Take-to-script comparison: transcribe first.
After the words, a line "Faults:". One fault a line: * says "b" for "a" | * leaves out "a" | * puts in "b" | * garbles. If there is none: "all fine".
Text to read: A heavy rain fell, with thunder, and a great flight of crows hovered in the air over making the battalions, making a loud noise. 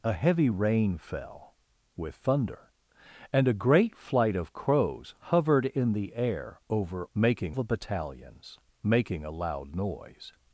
A heavy rain fell, with thunder, and a great flight of crows hovered in the air over making the battalions, making a loud noise.
Faults:
all fine